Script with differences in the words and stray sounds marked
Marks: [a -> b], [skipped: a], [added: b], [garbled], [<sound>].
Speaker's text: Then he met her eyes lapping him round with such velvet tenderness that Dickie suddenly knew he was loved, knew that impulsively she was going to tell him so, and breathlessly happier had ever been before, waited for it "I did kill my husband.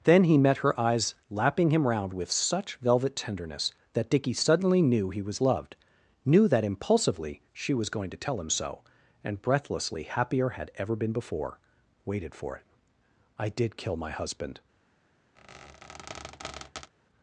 Then he met her eyes lapping him round with such velvet tenderness that Dickie suddenly knew he was loved, knew that impulsively she was going to tell him so, and breathlessly happier had ever been before, waited for it "I did kill my husband. [squeak]